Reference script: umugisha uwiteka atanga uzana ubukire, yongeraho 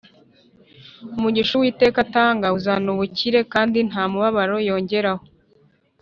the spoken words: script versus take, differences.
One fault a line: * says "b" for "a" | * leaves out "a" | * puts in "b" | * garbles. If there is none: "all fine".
* puts in "kandi nta mubabaro"